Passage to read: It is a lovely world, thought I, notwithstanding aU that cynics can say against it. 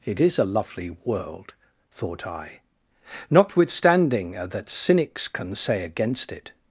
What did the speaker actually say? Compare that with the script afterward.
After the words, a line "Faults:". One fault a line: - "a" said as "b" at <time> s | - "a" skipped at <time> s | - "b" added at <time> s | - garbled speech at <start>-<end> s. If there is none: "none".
It is a lovely world, thought I, notwithstanding that cynics can say against it.
Faults:
- "aU" skipped at 4.3 s